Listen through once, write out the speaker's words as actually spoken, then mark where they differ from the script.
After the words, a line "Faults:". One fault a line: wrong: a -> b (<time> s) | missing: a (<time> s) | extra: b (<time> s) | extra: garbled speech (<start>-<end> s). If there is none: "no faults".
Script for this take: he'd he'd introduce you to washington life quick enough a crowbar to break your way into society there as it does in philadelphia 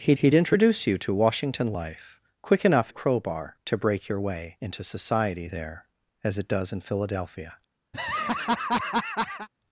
he'd he'd introduce you to washington life quick enough a crowbar to break your way into society there as it does in philadelphia
Faults:
no faults